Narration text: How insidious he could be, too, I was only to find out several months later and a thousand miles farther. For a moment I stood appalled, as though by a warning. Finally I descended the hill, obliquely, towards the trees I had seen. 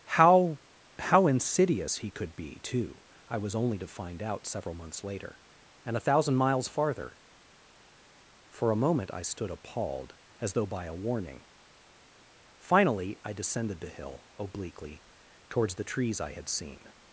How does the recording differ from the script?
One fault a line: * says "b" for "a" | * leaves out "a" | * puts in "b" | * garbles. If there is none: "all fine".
* puts in "how"